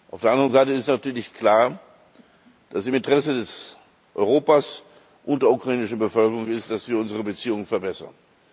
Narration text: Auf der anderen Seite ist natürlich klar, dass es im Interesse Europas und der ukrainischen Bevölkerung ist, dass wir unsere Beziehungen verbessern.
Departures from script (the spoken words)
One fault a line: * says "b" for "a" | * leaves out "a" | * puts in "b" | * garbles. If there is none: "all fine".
all fine